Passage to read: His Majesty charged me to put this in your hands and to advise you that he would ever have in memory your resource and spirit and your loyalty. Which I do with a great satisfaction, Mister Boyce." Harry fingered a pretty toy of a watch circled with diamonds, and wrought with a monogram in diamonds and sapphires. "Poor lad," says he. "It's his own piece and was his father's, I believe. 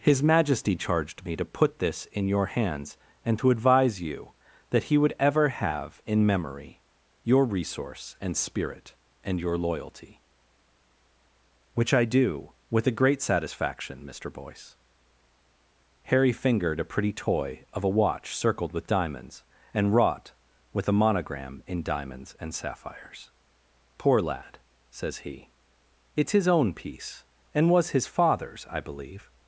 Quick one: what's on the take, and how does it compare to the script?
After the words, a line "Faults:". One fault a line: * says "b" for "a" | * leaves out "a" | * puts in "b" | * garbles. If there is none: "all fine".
His Majesty charged me to put this in your hands and to advise you that he would ever have in memory your resource and spirit and your loyalty. Which I do with a great satisfaction, Mister Boyce." Harry fingered a pretty toy of a watch circled with diamonds, and wrought with a monogram in diamonds and sapphires. "Poor lad," says he. "It's his own piece and was his father's, I believe.
Faults:
all fine